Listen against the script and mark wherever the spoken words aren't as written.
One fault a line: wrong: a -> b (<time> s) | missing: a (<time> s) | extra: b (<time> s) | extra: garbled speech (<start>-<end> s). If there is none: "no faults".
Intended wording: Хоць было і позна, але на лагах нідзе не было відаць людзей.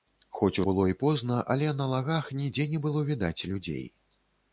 no faults